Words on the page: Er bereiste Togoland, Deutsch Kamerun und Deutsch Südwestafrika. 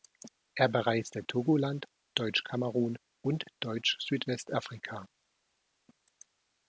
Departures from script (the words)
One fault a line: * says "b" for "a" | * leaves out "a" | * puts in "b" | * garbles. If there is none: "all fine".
all fine